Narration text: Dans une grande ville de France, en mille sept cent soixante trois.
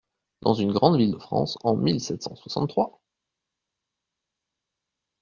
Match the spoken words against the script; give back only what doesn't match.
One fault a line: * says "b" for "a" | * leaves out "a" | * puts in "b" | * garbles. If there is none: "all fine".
all fine